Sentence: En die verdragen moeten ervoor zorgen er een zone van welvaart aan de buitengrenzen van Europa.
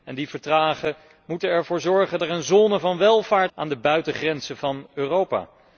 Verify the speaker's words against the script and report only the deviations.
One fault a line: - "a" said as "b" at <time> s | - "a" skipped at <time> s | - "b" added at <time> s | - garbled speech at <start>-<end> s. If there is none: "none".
none